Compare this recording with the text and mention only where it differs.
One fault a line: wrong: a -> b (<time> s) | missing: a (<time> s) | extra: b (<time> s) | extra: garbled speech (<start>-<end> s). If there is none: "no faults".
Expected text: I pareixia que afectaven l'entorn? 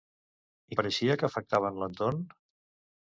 no faults